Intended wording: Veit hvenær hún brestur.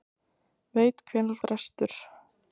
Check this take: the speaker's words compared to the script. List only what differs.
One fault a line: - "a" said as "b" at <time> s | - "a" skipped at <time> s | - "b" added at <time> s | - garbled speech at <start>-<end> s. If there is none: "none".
- "hún" skipped at 1.4 s